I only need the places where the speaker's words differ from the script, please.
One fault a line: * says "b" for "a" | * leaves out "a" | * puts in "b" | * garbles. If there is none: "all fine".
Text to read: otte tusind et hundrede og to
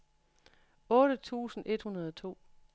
all fine